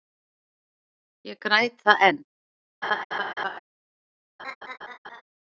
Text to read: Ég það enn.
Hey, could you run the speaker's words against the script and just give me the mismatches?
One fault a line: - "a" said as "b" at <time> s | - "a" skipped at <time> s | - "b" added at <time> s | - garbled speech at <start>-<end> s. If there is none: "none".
- "græt" added at 1.5 s